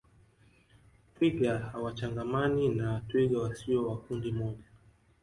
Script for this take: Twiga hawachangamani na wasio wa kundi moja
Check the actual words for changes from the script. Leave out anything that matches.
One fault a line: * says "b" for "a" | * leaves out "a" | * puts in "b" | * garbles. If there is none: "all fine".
* puts in "twiga"